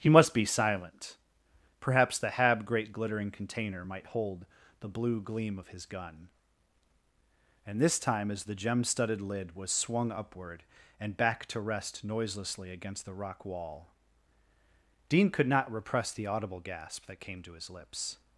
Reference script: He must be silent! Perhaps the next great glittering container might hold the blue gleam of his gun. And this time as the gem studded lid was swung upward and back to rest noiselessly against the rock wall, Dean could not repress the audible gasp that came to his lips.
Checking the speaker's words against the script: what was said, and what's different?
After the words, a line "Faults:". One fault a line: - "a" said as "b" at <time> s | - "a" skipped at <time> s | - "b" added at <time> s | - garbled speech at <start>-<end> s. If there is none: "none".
He must be silent! Perhaps the hab great glittering container might hold the blue gleam of his gun. And this time as the gem studded lid was swung upward and back to rest noiselessly against the rock wall, Dean could not repress the audible gasp that came to his lips.
Faults:
- "next" said as "hab" at 2.3 s